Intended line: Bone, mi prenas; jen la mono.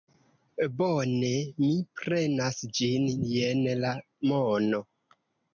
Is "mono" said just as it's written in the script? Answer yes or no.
yes